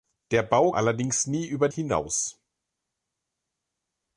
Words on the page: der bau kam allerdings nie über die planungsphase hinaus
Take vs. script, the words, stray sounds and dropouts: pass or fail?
fail